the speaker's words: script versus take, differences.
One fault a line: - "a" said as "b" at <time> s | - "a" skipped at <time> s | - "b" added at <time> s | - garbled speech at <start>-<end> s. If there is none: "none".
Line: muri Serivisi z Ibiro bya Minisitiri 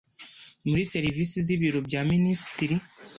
none